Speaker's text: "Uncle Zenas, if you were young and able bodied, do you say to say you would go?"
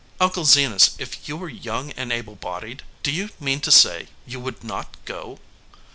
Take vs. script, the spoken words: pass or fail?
fail